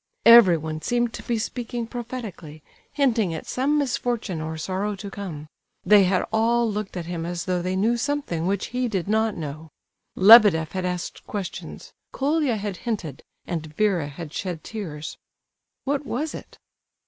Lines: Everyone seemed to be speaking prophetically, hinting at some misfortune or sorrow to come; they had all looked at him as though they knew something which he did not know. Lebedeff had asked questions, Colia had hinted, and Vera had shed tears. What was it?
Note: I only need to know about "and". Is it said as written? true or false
true